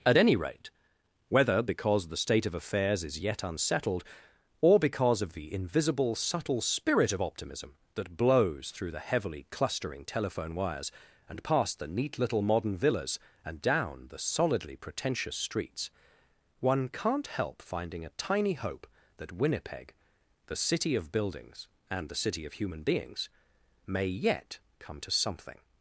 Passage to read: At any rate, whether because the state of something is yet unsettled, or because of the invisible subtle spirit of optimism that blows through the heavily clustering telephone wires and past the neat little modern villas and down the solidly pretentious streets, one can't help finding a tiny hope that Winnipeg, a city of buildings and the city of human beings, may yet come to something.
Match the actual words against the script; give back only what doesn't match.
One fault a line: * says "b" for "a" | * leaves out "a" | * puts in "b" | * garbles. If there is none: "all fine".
* says "affairs" for "something"
* says "the" for "a"